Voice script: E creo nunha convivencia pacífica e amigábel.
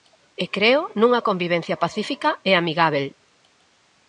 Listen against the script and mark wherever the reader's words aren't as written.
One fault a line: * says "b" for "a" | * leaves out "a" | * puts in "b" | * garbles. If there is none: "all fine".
all fine